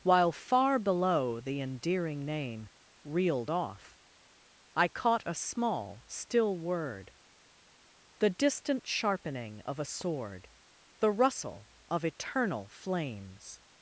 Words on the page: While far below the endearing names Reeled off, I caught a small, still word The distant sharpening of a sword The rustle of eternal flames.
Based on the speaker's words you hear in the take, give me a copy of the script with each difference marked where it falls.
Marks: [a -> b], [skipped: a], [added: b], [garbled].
While far below the endearing [names -> name] Reeled off, I caught a small, still word The distant sharpening of a sword The rustle of eternal flames.